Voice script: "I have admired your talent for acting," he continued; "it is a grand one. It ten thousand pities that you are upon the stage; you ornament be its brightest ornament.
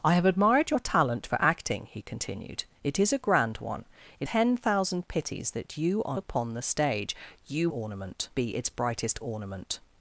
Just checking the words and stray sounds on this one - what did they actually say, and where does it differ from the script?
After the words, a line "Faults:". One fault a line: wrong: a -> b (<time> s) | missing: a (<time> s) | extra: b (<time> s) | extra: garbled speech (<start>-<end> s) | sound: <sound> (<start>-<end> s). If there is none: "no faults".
"I have admired your talent for acting," he continued; "it is a grand one. It ten thousand pities that you are upon the stage; you ornament be its brightest ornament.
Faults:
no faults